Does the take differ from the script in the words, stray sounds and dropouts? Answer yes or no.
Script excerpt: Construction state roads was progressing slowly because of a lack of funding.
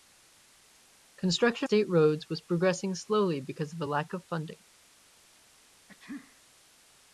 yes